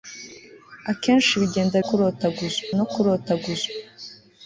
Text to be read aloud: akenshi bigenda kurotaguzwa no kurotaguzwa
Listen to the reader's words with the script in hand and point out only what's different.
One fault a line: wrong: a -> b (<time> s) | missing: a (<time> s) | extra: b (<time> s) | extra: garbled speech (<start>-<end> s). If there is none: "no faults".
no faults